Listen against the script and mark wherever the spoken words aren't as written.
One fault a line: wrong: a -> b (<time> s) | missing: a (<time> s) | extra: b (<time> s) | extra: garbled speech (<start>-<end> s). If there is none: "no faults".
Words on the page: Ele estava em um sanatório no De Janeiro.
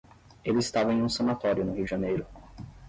extra: Rio (1.8 s)